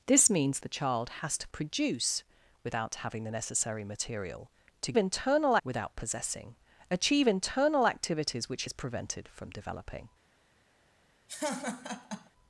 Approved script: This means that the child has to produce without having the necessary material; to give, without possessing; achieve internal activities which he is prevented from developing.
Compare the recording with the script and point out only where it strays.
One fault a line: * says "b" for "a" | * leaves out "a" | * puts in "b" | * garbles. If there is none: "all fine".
* leaves out "that"
* says "internal" for "give"
* leaves out "he"